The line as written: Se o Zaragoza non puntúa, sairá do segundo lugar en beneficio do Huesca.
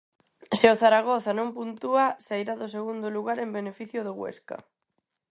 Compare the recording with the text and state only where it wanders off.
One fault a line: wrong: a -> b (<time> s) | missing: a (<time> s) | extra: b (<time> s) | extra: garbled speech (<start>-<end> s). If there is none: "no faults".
no faults